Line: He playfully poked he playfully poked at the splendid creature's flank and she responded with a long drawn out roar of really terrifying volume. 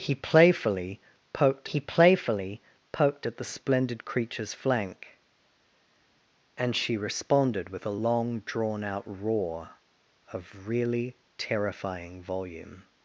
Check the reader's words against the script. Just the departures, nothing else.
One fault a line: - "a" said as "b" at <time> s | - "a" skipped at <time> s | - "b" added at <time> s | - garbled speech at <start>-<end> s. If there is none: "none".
none